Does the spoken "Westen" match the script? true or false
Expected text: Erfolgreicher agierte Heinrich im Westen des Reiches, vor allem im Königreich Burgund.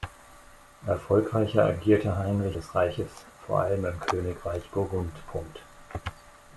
false